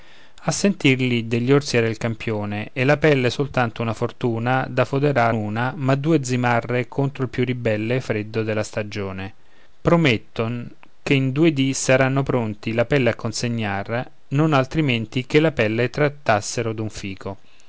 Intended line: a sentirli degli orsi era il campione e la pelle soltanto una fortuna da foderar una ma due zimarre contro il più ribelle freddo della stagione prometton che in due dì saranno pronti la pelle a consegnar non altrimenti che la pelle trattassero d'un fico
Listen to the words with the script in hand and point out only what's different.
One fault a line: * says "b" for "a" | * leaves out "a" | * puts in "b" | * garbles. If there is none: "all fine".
all fine